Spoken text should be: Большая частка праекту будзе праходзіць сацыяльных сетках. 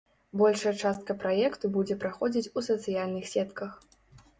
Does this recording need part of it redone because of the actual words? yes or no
yes